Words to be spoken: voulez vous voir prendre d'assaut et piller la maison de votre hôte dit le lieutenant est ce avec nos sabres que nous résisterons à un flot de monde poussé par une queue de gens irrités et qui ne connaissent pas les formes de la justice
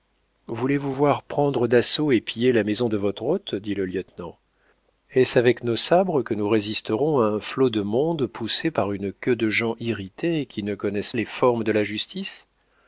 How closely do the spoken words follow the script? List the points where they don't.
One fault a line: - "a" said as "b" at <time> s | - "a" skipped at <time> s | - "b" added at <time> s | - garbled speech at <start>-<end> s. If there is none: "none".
- "pas" skipped at 11.1 s